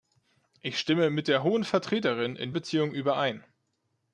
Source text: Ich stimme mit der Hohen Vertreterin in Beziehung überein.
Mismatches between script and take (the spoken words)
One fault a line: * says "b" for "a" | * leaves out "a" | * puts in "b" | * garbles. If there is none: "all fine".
all fine